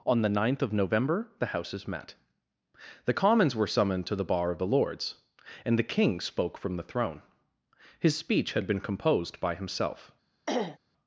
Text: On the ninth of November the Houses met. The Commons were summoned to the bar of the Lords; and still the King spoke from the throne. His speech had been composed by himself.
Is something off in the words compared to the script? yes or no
yes